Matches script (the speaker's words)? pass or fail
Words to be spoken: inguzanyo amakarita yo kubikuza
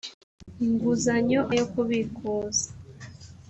fail